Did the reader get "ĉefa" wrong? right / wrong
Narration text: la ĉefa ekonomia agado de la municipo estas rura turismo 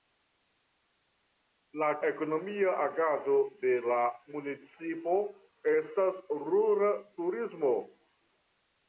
wrong